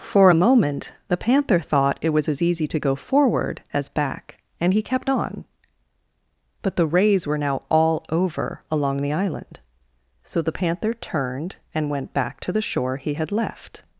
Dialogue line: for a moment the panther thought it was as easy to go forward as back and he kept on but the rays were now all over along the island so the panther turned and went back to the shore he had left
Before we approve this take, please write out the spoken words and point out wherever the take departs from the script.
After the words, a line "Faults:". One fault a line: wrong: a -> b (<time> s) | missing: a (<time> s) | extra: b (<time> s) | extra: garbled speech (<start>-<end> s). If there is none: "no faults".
for a moment the panther thought it was as easy to go forward as back and he kept on but the rays were now all over along the island so the panther turned and went back to the shore he had left
Faults:
no faults